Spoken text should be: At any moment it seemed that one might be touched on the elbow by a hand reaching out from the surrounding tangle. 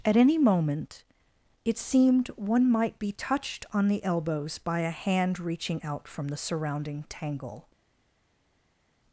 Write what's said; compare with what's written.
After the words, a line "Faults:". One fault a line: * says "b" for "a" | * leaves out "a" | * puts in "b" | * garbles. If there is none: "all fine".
At any moment it seemed one might be touched on the elbows by a hand reaching out from the surrounding tangle.
Faults:
* leaves out "that"
* says "elbows" for "elbow"